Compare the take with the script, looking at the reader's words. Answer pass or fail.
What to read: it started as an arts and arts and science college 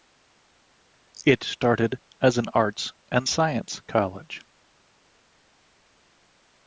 fail